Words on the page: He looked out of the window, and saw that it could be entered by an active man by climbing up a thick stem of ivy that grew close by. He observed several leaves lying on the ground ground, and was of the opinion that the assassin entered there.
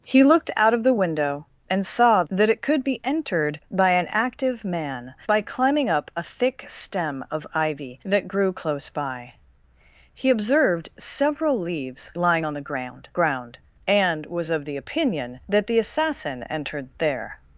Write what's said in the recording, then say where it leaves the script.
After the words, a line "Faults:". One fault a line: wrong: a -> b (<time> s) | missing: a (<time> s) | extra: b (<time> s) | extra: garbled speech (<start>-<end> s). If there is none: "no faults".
He looked out of the window, and saw that it could be entered by an active man by climbing up a thick stem of ivy that grew close by. He observed several leaves lying on the ground ground, and was of the opinion that the assassin entered there.
Faults:
no faults